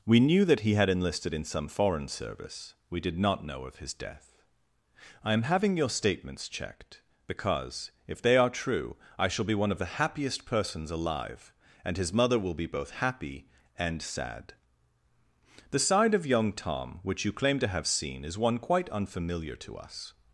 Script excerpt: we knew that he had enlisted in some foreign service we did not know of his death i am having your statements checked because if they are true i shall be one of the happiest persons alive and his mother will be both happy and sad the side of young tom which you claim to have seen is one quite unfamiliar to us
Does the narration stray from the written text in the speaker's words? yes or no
no